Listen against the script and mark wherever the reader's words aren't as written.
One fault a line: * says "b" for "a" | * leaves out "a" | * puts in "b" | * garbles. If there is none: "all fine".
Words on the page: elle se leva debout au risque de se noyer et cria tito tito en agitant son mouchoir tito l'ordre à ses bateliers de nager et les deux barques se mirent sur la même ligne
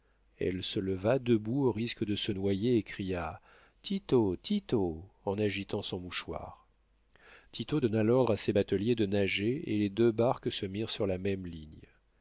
* puts in "donna"